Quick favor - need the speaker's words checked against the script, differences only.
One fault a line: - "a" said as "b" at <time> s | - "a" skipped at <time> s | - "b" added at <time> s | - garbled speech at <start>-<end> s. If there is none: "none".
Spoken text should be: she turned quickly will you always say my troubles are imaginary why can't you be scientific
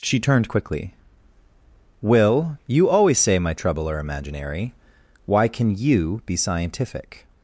- "troubles" said as "trouble" at 3.5 s
- "can't" said as "can" at 5.5 s